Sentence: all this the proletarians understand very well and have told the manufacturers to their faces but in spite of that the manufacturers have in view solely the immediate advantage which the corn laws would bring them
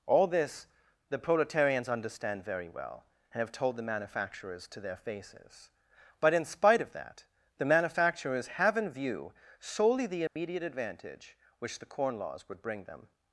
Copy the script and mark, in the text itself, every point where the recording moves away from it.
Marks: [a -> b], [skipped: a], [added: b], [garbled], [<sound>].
all this the proletarians understand very well and have told the manufacturers to their faces but in spite of that the manufacturers have in view solely the immediate [dropout] advantage which the corn laws would bring them